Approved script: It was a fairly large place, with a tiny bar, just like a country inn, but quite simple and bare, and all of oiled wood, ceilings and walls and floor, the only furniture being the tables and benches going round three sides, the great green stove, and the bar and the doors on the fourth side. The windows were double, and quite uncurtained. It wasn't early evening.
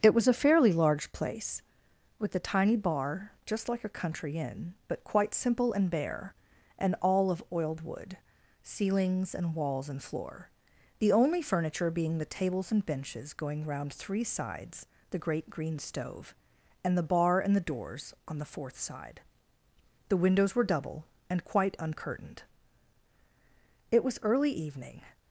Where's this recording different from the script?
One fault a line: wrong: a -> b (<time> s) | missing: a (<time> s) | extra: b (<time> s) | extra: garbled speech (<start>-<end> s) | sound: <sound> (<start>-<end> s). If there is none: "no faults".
wrong: wasn't -> was (24.0 s)